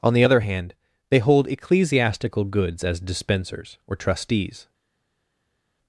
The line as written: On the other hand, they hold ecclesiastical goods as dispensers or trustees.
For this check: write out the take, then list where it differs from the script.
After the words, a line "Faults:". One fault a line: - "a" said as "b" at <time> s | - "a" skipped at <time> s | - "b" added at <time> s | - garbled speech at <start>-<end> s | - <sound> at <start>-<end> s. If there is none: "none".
On the other hand, they hold ecclesiastical goods as dispensers or trustees.
Faults:
none